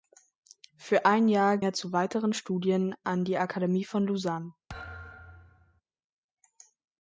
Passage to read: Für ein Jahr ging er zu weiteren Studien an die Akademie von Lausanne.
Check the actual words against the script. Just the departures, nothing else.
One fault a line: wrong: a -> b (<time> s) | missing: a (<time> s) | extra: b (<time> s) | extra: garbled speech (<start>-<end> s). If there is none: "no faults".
missing: ging (1.6 s)